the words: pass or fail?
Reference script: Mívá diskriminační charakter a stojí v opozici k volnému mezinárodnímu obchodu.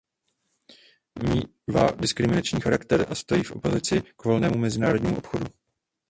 pass